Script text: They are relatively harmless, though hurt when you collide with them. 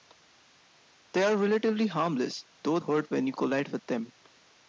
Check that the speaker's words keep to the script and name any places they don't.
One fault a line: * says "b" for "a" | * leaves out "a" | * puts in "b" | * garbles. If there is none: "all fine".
all fine